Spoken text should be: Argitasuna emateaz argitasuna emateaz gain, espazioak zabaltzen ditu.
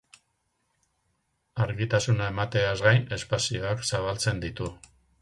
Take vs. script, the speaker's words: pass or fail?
fail